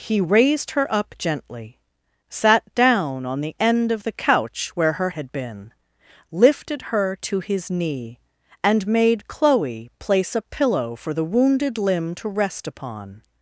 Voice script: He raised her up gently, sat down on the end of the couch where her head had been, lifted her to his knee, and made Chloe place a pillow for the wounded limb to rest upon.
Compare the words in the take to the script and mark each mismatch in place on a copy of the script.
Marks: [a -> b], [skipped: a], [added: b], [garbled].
He raised her up gently, sat down on the end of the couch where her [skipped: head] had been, lifted her to his knee, and made Chloe place a pillow for the wounded limb to rest upon.